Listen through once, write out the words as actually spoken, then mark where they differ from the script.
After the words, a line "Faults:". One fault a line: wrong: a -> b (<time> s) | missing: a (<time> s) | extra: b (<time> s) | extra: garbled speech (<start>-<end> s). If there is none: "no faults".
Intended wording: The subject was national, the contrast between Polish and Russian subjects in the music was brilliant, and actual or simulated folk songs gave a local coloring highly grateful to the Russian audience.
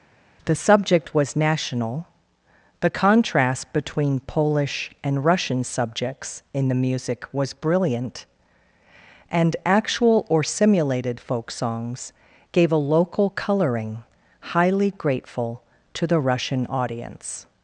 The subject was national, the contrast between Polish and Russian subjects in the music was brilliant, and actual or simulated folk songs gave a local coloring highly grateful to the Russian audience.
Faults:
no faults